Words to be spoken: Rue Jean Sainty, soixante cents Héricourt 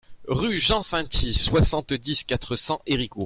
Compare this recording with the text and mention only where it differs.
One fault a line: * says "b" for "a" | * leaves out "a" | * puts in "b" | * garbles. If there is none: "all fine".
* puts in "dix quatre"